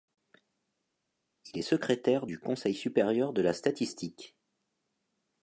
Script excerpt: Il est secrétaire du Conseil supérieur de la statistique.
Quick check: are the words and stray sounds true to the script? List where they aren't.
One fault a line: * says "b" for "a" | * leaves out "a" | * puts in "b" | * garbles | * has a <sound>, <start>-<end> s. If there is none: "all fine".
all fine